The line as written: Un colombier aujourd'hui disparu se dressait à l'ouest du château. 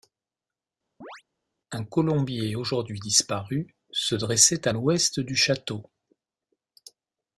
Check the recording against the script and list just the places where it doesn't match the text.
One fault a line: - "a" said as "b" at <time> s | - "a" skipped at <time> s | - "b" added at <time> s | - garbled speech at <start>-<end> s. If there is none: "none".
none